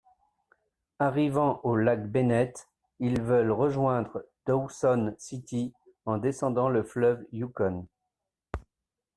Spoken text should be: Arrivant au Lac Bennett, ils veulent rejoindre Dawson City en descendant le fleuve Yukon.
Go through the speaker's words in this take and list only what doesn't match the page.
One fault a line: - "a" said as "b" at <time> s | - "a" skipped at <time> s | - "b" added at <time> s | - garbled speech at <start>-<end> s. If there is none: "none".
none